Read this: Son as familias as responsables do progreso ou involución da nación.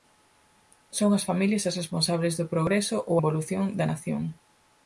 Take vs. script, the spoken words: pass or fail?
pass